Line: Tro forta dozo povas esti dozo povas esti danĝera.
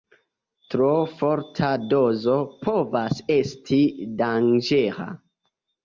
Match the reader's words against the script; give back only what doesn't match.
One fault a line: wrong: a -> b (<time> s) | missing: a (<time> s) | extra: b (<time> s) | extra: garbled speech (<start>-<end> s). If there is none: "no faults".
missing: dozo povas esti (3.8 s)